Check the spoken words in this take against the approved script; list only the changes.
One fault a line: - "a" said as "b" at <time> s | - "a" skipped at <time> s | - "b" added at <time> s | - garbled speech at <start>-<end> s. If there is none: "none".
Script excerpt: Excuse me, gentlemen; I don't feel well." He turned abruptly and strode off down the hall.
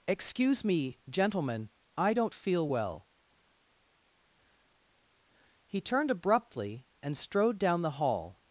- "off" skipped at 7.6 s